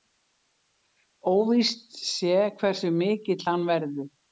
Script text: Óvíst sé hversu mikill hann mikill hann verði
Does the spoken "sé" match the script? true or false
true